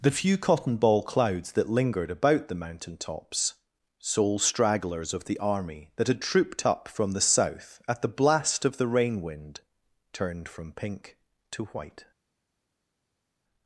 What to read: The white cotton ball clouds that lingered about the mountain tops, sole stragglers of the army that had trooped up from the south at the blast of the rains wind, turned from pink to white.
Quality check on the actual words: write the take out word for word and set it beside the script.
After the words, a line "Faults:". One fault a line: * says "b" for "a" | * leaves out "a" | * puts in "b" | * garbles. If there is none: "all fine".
The few cotton ball clouds that lingered about the mountain tops, sole stragglers of the army that had trooped up from the south at the blast of the rain wind, turned from pink to white.
Faults:
* says "few" for "white"
* says "rain" for "rains"